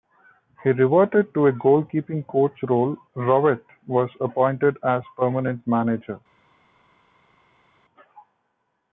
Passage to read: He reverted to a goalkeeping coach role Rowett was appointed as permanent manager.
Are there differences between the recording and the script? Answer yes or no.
no